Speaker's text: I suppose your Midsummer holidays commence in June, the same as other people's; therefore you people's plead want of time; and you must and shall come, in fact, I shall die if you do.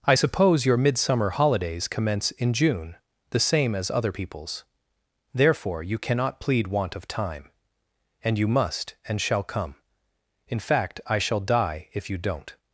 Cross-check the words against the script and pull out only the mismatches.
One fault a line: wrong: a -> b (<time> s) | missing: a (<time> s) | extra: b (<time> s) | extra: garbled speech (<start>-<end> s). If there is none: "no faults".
wrong: people's -> cannot (6.0 s)
wrong: do -> don't (12.2 s)